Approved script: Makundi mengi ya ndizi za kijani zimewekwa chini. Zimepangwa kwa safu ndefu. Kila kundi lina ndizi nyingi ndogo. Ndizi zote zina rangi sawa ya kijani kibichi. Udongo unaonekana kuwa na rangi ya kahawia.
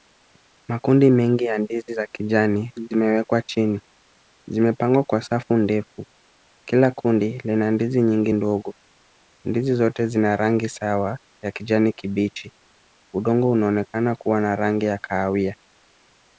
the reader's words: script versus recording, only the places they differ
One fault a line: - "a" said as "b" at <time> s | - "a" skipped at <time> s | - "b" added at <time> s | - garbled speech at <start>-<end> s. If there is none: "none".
none